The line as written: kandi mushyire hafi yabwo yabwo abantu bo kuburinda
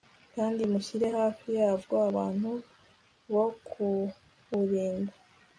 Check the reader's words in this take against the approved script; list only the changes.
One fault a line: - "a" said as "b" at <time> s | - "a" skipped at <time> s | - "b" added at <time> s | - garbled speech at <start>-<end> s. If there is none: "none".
- "yabwo" skipped at 2.0 s